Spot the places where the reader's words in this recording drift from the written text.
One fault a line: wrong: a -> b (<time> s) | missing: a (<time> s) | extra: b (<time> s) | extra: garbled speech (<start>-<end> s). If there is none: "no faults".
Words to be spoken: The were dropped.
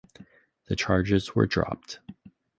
extra: charges (0.7 s)